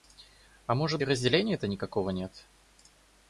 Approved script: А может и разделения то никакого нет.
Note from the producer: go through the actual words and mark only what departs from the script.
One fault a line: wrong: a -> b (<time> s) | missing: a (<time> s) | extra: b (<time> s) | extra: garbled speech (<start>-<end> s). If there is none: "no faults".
no faults